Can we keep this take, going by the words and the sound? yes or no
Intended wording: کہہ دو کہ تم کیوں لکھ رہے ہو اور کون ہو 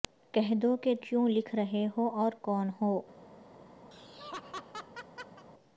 no